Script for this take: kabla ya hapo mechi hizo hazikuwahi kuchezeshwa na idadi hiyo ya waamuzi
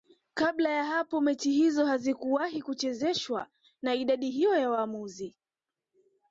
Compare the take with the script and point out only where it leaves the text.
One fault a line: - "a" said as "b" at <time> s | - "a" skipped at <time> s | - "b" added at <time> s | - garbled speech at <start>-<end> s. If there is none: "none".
none